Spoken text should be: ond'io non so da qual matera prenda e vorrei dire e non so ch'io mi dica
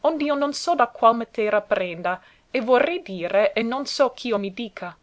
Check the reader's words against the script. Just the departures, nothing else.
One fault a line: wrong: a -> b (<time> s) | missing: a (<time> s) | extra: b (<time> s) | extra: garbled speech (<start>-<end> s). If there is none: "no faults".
no faults